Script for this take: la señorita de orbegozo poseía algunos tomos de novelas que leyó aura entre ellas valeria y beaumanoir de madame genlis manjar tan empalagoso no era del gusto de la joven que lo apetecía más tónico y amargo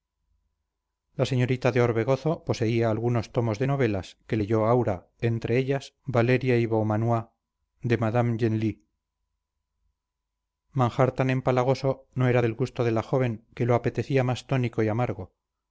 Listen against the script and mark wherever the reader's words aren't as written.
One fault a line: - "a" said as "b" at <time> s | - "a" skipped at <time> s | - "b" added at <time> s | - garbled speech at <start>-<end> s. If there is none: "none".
none